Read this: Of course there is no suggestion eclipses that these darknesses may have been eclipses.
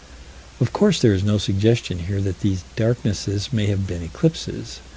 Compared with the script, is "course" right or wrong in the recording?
right